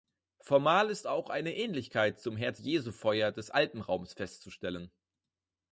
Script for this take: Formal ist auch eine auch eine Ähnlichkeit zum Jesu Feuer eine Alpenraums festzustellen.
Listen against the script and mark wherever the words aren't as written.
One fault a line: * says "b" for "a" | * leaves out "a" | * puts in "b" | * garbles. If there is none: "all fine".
* leaves out "auch eine"
* puts in "Herz"
* says "des" for "eine"